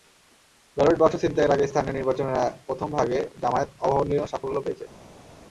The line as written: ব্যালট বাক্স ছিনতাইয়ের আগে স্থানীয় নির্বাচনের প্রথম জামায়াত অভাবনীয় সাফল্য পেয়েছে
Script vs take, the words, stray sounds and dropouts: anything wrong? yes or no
yes